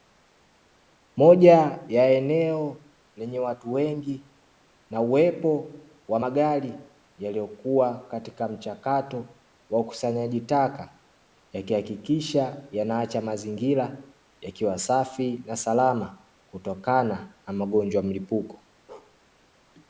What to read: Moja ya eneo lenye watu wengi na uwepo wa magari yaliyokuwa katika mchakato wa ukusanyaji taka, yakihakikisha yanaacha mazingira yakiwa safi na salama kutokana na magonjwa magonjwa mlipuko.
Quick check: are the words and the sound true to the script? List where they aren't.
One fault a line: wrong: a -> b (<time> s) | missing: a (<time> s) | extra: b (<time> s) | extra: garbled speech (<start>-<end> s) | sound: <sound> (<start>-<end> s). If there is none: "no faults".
missing: magonjwa (18.0 s)
sound: bark (18.9-19.2 s)